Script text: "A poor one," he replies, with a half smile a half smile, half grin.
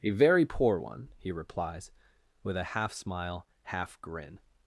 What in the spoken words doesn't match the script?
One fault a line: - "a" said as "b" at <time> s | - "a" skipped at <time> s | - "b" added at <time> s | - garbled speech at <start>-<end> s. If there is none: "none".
- "very" added at 0.1 s
- "a half smile" skipped at 3.5 s